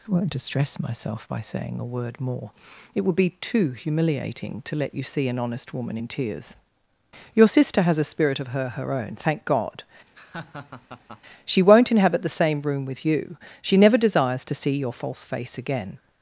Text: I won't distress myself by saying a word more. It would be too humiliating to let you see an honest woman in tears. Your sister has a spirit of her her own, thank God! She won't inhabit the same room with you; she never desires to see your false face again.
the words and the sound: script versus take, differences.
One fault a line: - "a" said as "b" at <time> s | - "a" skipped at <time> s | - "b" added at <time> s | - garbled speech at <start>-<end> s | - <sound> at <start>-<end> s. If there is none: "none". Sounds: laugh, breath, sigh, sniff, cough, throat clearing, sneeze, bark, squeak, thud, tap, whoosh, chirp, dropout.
- laugh at 10.1-11.2 s